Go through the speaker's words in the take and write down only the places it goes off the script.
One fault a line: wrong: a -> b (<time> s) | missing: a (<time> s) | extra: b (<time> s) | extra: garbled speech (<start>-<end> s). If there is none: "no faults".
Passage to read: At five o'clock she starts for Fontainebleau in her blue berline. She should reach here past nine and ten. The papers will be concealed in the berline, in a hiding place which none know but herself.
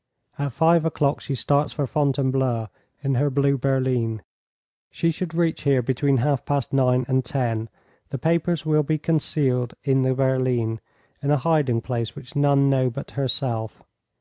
extra: between half (5.8 s)